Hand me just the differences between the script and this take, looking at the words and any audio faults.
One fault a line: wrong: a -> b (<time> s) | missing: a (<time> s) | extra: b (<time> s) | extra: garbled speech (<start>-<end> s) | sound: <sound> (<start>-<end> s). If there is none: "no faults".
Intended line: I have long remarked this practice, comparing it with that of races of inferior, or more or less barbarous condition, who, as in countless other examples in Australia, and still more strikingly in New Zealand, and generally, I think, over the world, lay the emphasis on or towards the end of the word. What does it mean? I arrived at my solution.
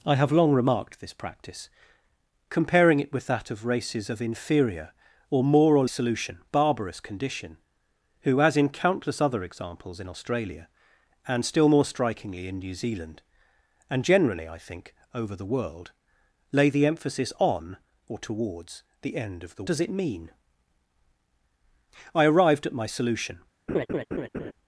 wrong: less -> solution (5.8 s)
missing: word What (19.6 s)
sound: laugh (23.7-24.5 s)